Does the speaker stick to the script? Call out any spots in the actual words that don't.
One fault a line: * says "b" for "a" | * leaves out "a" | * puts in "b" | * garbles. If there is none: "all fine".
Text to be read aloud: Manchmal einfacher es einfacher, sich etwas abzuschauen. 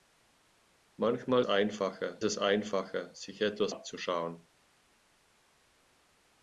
all fine